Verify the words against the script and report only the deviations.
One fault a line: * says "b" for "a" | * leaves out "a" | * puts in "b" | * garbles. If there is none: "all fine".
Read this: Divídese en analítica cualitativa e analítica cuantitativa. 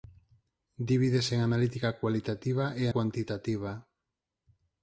* leaves out "analítica"